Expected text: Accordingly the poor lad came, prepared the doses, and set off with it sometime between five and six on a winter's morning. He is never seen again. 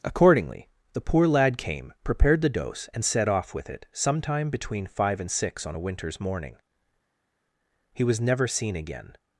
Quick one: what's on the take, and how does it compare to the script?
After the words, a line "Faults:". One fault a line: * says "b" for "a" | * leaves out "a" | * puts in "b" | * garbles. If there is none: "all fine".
Accordingly the poor lad came, prepared the dose, and set off with it sometime between five and six on a winter's morning. He was never seen again.
Faults:
* says "dose" for "doses"
* says "was" for "is"